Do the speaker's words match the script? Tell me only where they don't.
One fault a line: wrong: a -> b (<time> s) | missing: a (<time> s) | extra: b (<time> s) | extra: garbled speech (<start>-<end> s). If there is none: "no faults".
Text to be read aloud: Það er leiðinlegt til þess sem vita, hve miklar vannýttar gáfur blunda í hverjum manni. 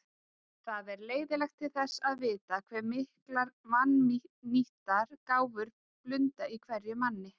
wrong: sem -> að (2.1 s)